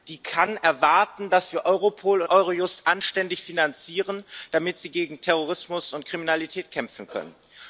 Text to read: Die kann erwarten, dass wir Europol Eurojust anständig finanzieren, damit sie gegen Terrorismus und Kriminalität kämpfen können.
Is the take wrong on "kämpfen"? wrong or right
right